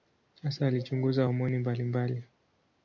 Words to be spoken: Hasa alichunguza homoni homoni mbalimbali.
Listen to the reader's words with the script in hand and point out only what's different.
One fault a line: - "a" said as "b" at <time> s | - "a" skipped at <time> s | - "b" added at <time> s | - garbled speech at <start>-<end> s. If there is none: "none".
- "homoni" skipped at 1.6 s